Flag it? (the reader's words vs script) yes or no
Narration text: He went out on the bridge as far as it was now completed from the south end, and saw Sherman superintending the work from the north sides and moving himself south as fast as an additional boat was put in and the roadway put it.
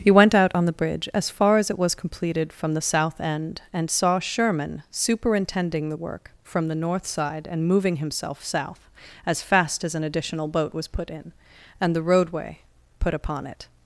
yes